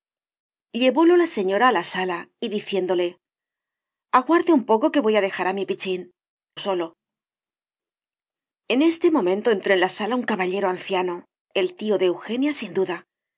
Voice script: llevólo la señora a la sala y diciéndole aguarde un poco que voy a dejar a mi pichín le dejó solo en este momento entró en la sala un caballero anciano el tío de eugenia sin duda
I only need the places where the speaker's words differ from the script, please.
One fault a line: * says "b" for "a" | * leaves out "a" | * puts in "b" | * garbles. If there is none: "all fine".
* leaves out "le dejó"